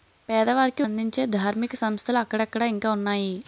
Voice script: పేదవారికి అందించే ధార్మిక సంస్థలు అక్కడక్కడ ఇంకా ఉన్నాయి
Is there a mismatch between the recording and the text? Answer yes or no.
no